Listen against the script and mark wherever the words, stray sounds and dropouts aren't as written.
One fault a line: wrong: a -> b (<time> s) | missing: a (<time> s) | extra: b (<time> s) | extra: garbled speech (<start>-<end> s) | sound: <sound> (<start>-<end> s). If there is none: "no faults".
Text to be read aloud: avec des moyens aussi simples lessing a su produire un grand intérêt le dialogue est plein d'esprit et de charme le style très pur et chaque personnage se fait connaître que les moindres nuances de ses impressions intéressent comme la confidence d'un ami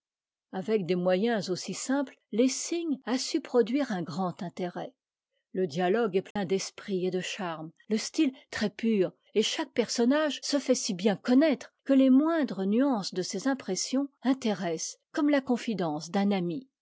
sound: dropout (6.3-6.4 s)
extra: si bien (10.8 s)